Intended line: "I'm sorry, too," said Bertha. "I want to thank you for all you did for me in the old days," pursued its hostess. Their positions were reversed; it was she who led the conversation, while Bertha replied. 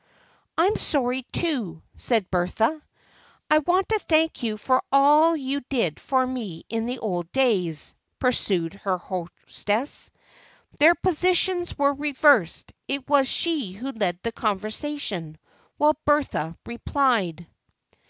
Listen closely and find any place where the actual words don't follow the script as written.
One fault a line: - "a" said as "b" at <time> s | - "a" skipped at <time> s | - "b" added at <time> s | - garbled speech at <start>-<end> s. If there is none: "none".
- "its" said as "her" at 8.7 s